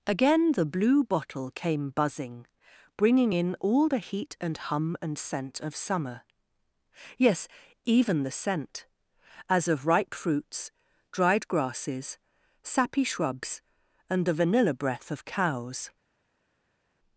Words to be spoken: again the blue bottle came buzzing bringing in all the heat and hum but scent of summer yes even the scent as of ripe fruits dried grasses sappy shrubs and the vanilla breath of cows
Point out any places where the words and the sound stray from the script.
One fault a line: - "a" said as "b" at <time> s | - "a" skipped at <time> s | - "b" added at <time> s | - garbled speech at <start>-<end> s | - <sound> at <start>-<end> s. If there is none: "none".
- "but" said as "and" at 5.0 s